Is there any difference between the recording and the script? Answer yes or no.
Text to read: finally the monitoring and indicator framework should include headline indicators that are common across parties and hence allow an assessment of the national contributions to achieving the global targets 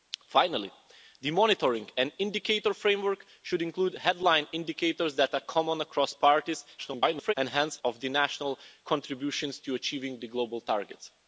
yes